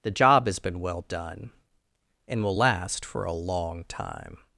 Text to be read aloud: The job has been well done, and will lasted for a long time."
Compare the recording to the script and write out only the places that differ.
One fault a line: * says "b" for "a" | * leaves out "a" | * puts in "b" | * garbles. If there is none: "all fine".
* says "last" for "lasted"